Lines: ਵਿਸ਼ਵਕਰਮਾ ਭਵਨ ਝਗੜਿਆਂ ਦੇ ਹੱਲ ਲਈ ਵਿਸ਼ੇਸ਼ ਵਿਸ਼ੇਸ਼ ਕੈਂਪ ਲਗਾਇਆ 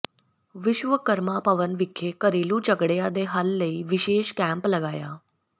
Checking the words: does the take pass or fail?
fail